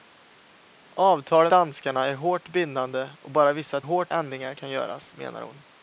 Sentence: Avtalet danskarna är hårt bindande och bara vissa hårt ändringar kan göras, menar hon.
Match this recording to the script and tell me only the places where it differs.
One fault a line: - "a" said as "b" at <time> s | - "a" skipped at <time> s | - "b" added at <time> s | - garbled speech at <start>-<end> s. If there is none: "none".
none